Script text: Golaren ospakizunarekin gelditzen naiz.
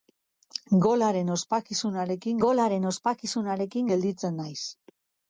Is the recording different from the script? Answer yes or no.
yes